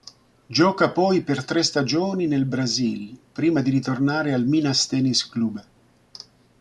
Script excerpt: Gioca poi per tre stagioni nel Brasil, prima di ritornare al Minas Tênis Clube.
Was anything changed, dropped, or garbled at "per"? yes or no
no